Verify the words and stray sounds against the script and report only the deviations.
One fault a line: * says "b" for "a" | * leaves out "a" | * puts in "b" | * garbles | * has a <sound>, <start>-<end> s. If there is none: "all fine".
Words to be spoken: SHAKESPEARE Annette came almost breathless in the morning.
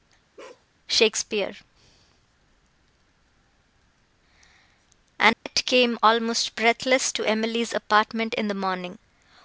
* has a bark, 0.4-0.7 s
* has a dropout, 5.3-5.5 s
* puts in "to Emily's apartment"